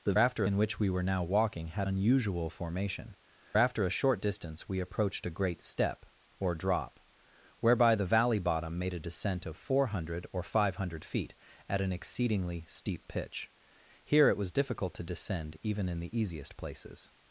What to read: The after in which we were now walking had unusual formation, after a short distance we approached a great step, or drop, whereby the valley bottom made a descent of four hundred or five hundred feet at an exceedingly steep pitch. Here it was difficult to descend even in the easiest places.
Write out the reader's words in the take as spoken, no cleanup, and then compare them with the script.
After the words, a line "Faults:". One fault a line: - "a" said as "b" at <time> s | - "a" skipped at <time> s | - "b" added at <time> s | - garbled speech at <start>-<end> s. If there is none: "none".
The after in which we were now walking had unusual formation, after a short distance we approached a great step, or drop, whereby the valley bottom made a descent of four hundred or five hundred feet at an exceedingly steep pitch. Here it was difficult to descend even in the easiest places.
Faults:
none